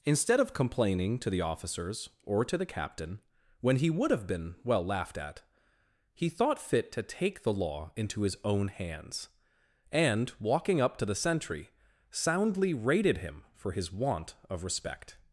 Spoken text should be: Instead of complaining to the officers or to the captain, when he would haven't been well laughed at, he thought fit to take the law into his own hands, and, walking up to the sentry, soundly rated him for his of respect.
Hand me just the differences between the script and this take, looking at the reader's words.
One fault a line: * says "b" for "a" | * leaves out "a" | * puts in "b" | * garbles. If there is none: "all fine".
* says "have" for "haven't"
* puts in "want"